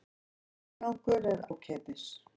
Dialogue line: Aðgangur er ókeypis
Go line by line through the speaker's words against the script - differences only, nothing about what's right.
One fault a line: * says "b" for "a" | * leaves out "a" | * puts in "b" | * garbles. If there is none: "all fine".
all fine